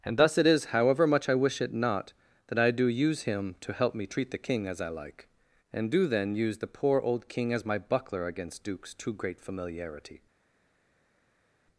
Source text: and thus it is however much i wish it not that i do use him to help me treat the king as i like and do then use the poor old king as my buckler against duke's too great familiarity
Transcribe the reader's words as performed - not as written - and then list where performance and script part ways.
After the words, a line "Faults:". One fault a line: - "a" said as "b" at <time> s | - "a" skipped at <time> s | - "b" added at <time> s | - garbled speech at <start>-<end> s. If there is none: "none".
and thus it is however much i wish it not that i do use him to help me treat the king as i like and do then use the poor old king as my buckler against duke's too great familiarity
Faults:
none